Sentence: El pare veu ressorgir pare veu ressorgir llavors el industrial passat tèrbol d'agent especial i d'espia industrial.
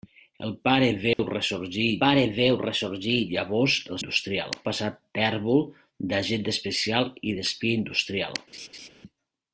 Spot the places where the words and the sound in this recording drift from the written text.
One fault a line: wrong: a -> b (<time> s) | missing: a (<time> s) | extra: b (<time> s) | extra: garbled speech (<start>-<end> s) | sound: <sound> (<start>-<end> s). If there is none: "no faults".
sound: dropout (1.1-1.2 s)
sound: laugh (8.5-8.9 s)